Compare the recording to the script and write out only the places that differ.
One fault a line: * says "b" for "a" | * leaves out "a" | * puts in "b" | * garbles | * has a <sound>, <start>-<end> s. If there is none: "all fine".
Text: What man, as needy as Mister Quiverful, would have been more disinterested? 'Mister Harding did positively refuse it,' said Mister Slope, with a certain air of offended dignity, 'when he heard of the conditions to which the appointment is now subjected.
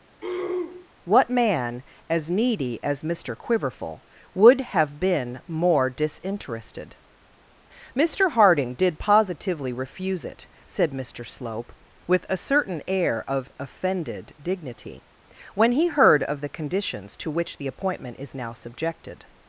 * has a throat clearing, 0.2-0.9 s